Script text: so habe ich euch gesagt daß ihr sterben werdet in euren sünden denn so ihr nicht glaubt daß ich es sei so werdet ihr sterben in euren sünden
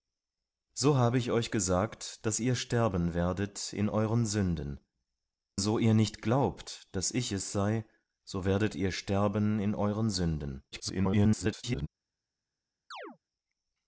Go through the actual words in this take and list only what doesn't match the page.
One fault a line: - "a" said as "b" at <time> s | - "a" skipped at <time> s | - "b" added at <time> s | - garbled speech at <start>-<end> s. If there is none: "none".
- "denn" skipped at 4.8 s
- garbled speech at 10.7-11.9 s